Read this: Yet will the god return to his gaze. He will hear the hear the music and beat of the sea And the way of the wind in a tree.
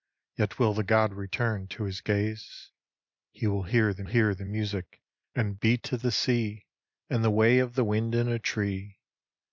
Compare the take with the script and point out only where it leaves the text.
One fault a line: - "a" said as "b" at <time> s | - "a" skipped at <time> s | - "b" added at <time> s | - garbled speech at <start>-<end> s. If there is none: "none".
none